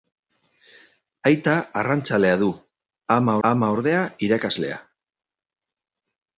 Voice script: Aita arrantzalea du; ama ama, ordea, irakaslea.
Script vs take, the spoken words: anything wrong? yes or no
no